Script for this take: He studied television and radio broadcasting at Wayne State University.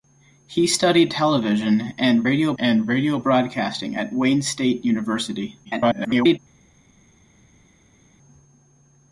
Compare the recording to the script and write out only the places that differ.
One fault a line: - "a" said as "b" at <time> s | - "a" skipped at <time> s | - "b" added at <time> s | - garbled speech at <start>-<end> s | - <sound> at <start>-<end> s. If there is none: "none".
- "and radio" added at 2.6 s
- garbled speech at 5.6-6.4 s